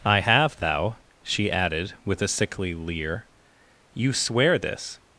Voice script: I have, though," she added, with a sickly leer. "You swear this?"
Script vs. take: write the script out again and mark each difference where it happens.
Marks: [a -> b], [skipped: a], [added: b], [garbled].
I have, [though," -> thou] she added, with a sickly leer. "You swear this?"